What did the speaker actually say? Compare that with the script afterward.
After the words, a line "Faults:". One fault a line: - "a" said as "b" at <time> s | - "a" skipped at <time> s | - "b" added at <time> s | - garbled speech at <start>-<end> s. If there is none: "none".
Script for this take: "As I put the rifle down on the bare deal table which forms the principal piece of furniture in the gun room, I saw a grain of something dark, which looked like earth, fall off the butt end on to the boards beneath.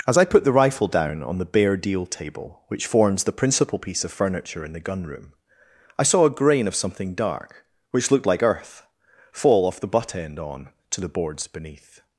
"As I put the rifle down on the bare deal table which forms the principal piece of furniture in the gun room, I saw a grain of something dark, which looked like earth, fall off the butt end on to the boards beneath.
Faults:
none